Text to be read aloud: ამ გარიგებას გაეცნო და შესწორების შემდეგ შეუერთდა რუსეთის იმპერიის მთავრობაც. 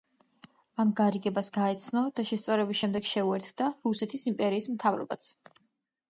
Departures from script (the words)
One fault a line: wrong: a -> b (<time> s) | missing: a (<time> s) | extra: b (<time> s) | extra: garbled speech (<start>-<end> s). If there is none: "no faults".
no faults